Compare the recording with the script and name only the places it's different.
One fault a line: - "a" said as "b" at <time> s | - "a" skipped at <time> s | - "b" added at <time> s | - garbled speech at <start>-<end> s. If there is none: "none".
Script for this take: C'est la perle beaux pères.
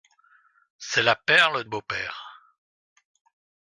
none